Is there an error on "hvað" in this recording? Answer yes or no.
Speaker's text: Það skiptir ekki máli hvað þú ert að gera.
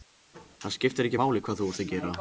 no